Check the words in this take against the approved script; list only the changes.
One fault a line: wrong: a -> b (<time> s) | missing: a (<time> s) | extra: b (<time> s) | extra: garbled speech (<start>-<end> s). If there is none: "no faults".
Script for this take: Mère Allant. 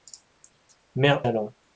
no faults